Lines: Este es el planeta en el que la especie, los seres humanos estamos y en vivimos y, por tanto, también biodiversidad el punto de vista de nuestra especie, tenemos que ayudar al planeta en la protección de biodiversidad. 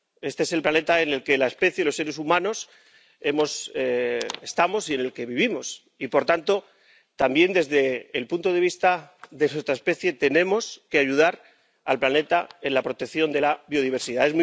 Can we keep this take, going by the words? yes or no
no